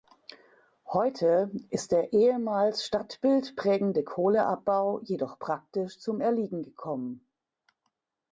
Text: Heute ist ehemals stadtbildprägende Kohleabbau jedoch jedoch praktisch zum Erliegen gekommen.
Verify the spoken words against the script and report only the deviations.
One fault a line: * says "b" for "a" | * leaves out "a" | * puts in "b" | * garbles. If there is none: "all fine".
* puts in "der"
* leaves out "jedoch"